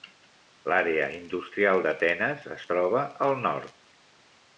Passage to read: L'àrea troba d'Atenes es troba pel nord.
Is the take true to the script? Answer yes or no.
no